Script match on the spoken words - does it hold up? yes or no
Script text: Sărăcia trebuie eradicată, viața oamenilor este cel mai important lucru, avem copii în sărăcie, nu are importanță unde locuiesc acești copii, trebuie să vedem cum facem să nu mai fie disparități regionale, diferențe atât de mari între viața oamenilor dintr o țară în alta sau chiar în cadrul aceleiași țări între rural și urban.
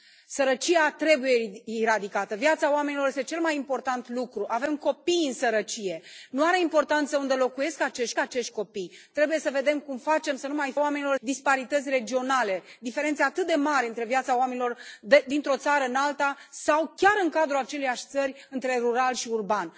no